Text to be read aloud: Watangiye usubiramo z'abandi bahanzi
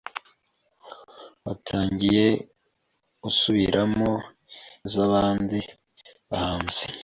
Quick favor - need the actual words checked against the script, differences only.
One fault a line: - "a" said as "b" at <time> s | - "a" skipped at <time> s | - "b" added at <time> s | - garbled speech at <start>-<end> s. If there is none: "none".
none